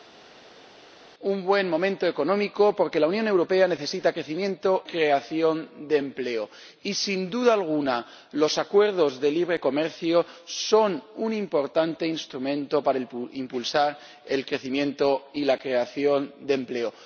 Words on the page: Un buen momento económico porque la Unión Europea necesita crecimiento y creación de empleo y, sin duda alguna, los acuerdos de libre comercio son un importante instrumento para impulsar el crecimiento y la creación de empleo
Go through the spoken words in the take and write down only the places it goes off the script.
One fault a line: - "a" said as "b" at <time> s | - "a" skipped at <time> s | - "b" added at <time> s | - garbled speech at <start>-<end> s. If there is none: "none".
- "y" skipped at 4.8 s